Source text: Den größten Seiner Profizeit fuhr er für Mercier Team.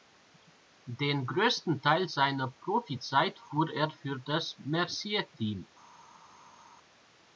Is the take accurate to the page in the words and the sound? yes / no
no